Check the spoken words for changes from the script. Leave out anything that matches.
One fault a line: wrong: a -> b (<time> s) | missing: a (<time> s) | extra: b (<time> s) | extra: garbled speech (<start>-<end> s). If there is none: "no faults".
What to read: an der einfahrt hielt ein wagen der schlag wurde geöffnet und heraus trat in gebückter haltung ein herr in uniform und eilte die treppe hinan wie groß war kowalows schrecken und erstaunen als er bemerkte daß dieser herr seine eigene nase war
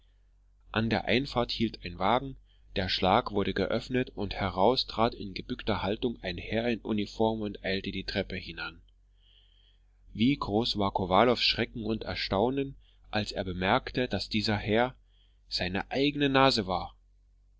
no faults